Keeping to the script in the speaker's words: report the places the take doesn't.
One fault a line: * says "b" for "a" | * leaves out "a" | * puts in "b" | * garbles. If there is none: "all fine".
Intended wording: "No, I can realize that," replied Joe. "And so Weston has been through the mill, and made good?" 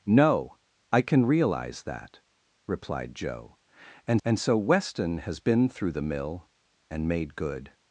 * puts in "and"